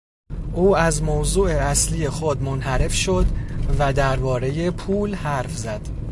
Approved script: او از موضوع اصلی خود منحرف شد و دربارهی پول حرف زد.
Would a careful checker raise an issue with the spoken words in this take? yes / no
no